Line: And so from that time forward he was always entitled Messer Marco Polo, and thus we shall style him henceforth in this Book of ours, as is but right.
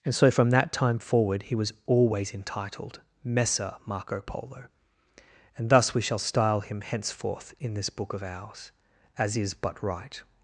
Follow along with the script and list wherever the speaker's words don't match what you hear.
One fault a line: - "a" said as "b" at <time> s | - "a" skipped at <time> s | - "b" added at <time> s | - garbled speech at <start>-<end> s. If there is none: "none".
none